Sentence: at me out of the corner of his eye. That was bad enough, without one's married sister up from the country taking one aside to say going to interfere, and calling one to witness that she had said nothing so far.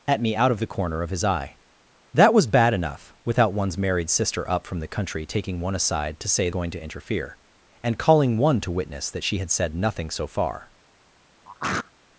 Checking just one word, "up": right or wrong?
right